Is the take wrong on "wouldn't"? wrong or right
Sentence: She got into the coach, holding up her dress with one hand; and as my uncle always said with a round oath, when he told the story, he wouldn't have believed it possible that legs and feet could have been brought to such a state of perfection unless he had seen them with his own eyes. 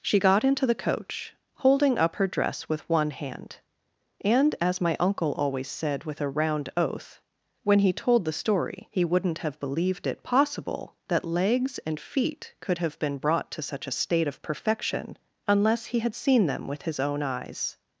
right